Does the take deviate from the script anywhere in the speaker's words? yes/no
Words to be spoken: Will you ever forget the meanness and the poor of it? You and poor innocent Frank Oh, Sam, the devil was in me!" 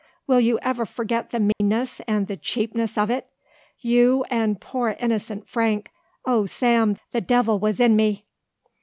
yes